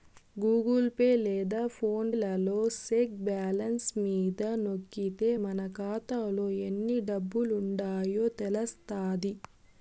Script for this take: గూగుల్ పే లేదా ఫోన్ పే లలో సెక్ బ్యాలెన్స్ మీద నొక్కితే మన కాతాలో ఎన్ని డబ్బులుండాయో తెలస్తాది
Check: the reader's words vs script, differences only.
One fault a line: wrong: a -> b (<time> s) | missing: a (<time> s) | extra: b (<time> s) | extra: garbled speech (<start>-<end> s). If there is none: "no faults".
missing: పే (2.1 s)